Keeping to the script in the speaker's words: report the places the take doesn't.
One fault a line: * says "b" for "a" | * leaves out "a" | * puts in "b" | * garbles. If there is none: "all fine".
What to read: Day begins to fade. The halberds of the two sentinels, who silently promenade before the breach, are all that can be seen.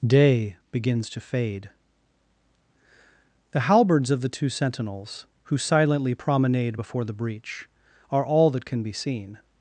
all fine